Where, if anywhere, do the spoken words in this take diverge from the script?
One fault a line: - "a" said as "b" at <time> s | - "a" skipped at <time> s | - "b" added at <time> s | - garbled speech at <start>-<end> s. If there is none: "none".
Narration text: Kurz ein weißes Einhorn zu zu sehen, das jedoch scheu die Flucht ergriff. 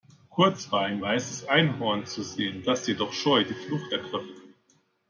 - "war" added at 0.7 s
- "zu" skipped at 2.2 s